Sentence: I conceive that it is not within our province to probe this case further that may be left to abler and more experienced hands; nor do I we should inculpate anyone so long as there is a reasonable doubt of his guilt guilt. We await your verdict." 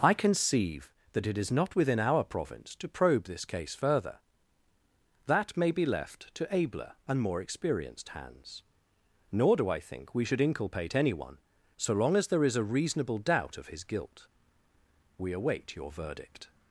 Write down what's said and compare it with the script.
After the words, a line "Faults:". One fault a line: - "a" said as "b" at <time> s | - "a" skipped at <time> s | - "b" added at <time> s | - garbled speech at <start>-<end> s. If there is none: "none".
I conceive that it is not within our province to probe this case further that may be left to abler and more experienced hands; nor do I think we should inculpate anyone so long as there is a reasonable doubt of his guilt. We await your verdict."
Faults:
- "think" added at 9.8 s
- "guilt" skipped at 14.3 s